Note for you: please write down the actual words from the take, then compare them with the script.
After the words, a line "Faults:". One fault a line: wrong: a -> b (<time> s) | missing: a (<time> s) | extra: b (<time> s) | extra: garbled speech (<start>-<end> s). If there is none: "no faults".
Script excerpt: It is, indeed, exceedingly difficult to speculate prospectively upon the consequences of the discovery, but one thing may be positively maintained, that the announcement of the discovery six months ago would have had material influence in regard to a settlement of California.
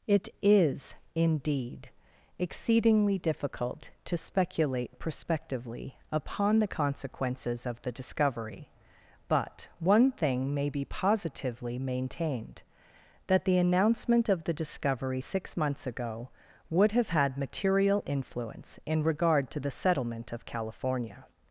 It is, indeed, exceedingly difficult to speculate prospectively upon the consequences of the discovery, but one thing may be positively maintained, that the announcement of the discovery six months ago would have had material influence in regard to the settlement of California.
Faults:
wrong: a -> the (19.6 s)